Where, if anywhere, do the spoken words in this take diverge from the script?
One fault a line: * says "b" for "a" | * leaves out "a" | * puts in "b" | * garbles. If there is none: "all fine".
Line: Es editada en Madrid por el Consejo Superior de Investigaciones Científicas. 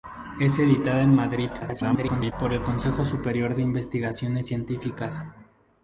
* garbles